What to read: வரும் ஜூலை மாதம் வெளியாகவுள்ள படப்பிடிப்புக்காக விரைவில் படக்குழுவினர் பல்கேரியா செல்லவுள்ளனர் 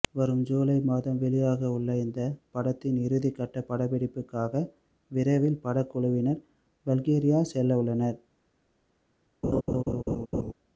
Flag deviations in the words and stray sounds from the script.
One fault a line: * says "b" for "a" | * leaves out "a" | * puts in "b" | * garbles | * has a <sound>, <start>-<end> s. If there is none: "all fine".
* puts in "இந்த படத்தின் இறுதிக்கட்ட"
* has a laugh, 9.4-10.5 s